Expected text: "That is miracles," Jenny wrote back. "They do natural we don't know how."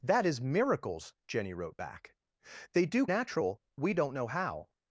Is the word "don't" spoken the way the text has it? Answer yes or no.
yes